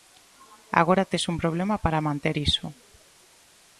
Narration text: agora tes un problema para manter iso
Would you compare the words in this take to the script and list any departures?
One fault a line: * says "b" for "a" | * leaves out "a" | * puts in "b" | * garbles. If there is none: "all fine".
all fine